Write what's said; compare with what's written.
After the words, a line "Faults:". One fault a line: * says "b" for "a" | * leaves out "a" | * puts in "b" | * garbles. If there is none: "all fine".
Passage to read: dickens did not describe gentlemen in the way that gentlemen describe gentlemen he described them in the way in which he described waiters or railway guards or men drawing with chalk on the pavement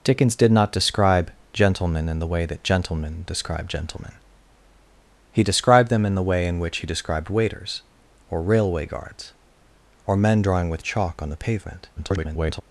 dickens did not describe gentlemen in the way that gentlemen describe gentlemen he described them in the way in which he described waiters or railway guards or men drawing with chalk on the pavement [garbled]
Faults:
* garbles